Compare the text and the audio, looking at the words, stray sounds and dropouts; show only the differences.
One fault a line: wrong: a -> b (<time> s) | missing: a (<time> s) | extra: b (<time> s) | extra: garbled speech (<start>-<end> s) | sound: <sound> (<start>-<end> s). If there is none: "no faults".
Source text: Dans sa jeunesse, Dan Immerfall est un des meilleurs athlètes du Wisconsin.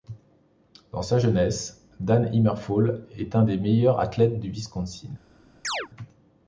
sound: chirp (5.6-5.9 s)